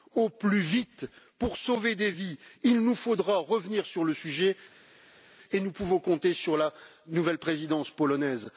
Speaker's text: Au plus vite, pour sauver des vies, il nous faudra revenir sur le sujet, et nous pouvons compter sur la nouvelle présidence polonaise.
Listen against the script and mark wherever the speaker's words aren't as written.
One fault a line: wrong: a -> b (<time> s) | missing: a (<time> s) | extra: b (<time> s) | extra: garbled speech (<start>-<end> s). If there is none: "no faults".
no faults